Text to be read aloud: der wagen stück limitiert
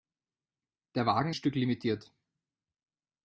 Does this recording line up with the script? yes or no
yes